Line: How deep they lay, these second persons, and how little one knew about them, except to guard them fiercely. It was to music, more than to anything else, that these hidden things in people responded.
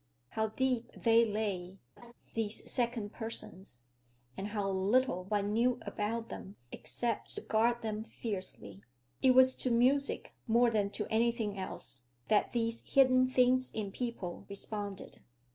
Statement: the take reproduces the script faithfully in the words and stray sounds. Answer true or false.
false